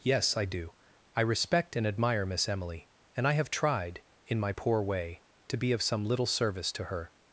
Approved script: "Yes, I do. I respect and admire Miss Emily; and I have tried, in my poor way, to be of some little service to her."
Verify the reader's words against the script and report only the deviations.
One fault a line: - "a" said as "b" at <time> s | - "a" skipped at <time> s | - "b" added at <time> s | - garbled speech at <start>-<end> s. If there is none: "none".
none